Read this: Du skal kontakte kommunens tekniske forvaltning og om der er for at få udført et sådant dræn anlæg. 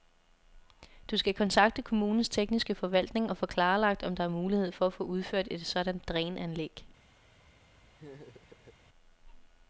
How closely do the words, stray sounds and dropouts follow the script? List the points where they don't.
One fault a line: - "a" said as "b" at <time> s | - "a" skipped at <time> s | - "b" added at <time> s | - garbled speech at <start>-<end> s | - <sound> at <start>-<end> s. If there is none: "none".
- "få klarlagt" added at 3.4 s
- "mulighed" added at 4.3 s
- laugh at 8.0-8.8 s